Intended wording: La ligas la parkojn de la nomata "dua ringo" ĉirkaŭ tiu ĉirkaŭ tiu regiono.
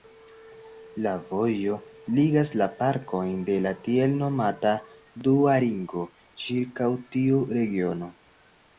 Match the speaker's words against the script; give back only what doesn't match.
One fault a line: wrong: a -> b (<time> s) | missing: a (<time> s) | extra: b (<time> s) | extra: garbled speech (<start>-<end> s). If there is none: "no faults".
extra: vojo (1.3 s)
extra: tiel (3.9 s)
missing: ĉirkaŭ tiu (7.5 s)